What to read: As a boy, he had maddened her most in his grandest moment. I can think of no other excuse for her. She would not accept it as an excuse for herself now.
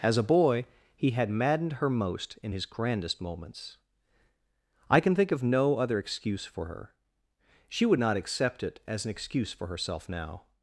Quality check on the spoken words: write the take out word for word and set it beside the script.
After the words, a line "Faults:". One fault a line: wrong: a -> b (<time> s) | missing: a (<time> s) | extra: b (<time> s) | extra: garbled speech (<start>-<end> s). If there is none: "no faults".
As a boy, he had maddened her most in his grandest moments. I can think of no other excuse for her. She would not accept it as an excuse for herself now.
Faults:
wrong: moment -> moments (3.2 s)